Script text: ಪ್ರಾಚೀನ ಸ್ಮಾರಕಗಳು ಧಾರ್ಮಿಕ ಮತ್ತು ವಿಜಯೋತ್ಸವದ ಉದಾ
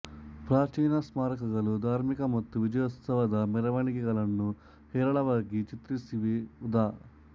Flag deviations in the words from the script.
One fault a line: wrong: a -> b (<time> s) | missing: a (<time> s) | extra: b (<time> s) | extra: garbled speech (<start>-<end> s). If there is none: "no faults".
extra: ಮೆರವಣಿಗೆಗಳನ್ನು ಹೇರಳವಾಗಿ ಚಿತ್ರಿಸಿವೆ (3.5 s)